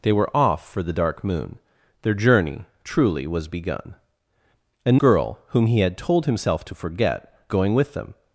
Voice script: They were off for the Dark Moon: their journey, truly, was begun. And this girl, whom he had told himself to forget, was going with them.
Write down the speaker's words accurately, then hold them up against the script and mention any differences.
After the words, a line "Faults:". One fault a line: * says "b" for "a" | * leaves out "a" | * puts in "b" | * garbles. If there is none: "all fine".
They were off for the Dark Moon: their journey, truly, was begun. And girl, whom he had told himself to forget, going with them.
Faults:
* leaves out "this"
* leaves out "was"